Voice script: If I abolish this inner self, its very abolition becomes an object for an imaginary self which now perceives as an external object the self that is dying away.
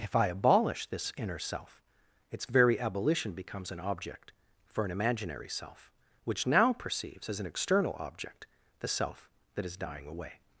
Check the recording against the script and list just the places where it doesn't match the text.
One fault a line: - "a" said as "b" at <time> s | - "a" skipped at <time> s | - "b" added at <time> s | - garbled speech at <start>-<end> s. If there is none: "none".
none